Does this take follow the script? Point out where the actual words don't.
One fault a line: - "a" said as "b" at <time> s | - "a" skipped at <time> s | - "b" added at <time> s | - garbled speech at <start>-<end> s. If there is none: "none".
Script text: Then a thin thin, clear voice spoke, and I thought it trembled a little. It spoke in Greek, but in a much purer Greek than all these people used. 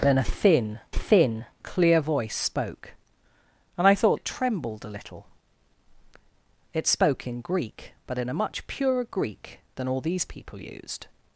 none